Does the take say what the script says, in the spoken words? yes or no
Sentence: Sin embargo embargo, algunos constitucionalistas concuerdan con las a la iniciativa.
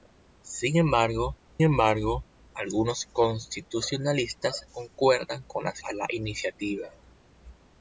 yes